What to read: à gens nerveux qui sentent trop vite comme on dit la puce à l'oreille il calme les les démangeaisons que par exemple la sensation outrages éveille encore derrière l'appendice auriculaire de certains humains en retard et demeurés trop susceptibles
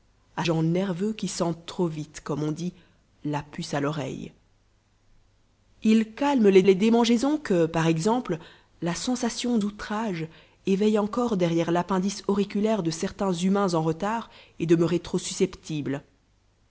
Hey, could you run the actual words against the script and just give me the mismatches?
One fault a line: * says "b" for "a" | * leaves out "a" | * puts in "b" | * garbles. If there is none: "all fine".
all fine